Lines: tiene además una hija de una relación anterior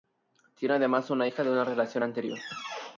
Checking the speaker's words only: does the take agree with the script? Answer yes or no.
yes